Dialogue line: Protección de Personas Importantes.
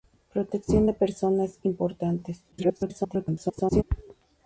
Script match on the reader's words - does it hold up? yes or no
no